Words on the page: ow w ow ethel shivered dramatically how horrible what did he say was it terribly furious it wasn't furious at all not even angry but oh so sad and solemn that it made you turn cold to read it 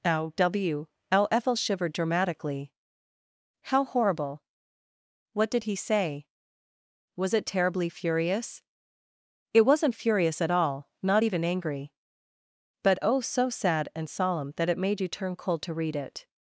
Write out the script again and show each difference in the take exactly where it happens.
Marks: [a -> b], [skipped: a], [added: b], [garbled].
ow w ow ethel shivered dramatically how horrible what did he say was it terribly furious it wasn't furious at all not even angry but oh so sad and solemn that it made you turn cold to read it